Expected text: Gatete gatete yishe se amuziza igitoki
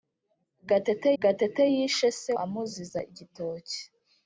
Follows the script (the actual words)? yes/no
yes